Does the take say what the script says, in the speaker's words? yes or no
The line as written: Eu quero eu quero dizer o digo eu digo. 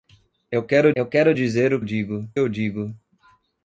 yes